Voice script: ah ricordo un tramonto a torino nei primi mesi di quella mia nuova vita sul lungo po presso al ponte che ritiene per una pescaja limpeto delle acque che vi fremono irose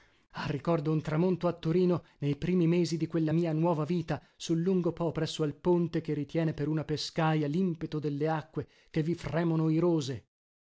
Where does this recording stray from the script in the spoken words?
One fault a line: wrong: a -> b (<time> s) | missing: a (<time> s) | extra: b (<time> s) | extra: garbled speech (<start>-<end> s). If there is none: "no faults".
no faults